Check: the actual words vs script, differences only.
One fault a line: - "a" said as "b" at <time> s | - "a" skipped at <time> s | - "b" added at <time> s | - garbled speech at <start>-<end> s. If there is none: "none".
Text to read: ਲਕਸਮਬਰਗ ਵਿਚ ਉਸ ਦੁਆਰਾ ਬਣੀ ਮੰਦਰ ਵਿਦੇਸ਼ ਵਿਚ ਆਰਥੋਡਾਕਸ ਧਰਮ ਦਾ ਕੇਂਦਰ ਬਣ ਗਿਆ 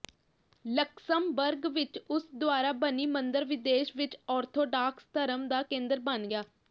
none